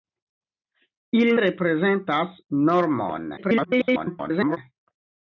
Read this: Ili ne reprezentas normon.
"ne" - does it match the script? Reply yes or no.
no